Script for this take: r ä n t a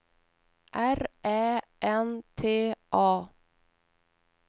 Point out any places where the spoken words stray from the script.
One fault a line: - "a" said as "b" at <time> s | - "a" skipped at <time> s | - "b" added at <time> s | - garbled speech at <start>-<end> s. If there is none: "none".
none